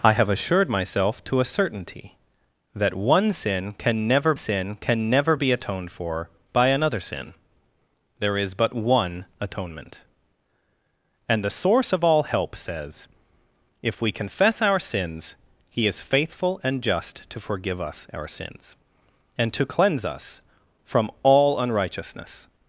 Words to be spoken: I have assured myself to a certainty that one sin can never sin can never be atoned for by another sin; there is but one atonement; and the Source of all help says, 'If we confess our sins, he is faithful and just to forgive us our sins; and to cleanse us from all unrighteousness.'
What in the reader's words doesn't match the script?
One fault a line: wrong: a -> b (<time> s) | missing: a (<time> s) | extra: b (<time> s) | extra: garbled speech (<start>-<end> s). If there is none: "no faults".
no faults